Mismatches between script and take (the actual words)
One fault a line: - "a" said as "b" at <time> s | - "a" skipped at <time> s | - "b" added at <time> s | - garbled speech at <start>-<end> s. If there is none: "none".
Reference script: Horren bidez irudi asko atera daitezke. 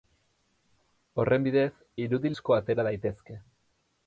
none